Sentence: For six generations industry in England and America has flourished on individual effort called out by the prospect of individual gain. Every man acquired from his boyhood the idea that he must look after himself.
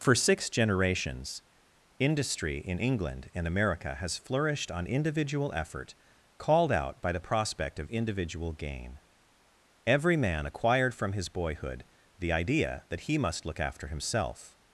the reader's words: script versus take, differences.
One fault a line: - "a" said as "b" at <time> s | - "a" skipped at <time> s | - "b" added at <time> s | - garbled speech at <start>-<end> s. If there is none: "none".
none